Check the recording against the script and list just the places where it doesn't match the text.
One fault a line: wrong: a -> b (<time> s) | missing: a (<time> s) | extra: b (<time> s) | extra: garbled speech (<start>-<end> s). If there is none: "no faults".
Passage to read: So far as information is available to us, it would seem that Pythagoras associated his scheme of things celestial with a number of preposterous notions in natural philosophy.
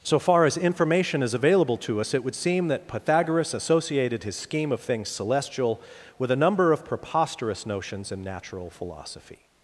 no faults